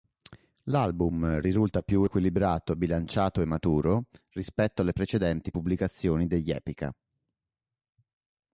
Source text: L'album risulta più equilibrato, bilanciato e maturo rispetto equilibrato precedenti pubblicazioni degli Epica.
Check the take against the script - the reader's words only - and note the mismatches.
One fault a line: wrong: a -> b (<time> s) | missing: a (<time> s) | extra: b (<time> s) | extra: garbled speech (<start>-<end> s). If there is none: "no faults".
wrong: equilibrato -> alle (4.8 s)